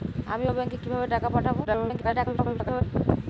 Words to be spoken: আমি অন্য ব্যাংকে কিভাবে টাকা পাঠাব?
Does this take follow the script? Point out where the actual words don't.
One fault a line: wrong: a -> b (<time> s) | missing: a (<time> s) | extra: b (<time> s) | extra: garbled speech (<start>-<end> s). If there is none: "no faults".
missing: অন্য (0.5 s)
extra: garbled speech (1.6-2.8 s)